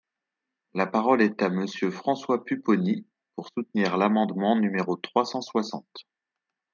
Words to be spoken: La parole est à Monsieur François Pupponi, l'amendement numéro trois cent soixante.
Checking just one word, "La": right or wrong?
right